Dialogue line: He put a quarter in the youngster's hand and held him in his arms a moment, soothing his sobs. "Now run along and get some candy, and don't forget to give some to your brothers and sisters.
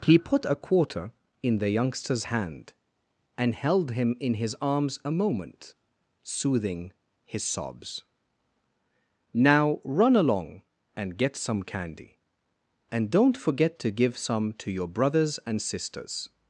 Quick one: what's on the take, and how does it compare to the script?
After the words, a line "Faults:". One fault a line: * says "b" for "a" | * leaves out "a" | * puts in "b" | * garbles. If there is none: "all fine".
He put a quarter in the youngster's hand and held him in his arms a moment, soothing his sobs. "Now run along and get some candy, and don't forget to give some to your brothers and sisters.
Faults:
all fine